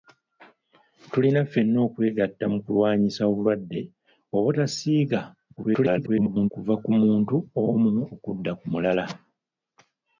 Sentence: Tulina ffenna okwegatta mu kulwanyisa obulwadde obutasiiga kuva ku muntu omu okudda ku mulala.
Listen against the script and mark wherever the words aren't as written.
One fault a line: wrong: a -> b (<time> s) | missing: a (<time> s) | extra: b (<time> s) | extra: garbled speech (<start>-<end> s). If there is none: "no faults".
extra: garbled speech (5.6-6.5 s)